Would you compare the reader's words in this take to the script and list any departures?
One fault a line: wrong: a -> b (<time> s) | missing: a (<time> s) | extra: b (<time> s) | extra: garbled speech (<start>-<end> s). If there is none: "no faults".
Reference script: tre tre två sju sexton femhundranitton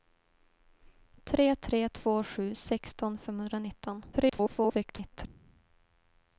extra: garbled speech (4.1-5.3 s)